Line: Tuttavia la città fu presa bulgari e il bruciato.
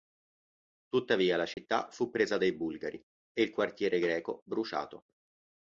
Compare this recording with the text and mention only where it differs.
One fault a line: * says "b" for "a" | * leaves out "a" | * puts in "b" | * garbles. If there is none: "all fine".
* puts in "dai"
* puts in "quartiere greco"